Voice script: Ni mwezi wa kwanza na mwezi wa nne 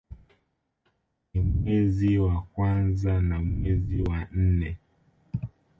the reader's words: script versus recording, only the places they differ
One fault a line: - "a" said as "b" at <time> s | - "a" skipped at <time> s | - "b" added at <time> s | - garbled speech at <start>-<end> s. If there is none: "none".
none